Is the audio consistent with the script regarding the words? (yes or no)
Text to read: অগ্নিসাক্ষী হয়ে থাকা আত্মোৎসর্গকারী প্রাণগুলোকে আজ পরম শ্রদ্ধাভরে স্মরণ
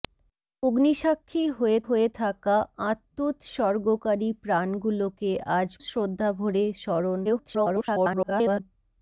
no